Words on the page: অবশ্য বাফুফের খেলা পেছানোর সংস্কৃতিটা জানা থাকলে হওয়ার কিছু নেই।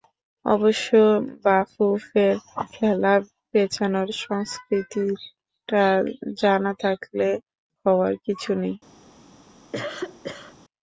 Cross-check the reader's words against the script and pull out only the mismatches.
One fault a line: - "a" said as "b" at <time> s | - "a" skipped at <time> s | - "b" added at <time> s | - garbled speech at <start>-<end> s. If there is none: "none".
none